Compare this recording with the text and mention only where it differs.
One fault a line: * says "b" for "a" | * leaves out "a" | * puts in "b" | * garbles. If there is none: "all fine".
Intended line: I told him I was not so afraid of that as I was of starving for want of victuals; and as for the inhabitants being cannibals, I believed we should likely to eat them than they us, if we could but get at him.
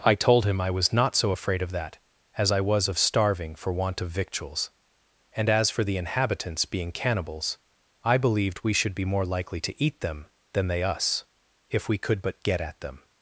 * puts in "be more"
* says "them" for "him"